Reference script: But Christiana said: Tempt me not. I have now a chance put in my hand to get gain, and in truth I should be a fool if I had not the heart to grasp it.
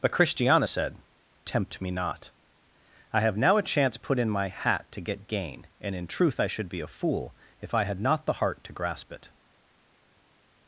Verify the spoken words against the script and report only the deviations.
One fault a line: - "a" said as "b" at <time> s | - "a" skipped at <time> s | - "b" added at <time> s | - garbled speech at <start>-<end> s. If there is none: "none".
- "hand" said as "hat" at 4.5 s